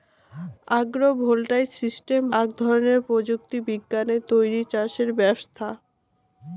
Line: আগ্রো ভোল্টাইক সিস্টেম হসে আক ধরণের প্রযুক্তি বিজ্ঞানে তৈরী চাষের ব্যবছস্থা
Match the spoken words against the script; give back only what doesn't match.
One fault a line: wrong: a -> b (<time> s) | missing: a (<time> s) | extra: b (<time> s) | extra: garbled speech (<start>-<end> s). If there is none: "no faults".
missing: হসে (2.2 s)